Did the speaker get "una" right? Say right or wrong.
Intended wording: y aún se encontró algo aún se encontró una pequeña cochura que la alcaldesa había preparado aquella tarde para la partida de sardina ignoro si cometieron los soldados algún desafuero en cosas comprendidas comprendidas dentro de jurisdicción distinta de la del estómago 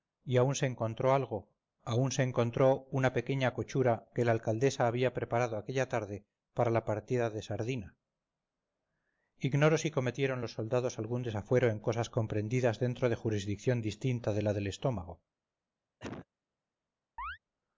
right